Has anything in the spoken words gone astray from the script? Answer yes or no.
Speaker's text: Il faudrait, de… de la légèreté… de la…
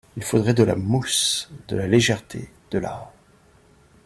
yes